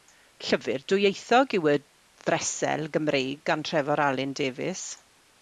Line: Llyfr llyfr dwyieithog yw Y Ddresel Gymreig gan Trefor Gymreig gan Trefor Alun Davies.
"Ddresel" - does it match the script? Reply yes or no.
yes